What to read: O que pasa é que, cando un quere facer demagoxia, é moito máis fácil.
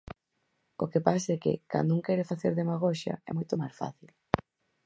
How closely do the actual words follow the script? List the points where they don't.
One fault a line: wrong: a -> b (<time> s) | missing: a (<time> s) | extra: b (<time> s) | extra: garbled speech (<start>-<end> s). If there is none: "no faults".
no faults